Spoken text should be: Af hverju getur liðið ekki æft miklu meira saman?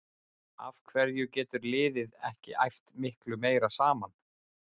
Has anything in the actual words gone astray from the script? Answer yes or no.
no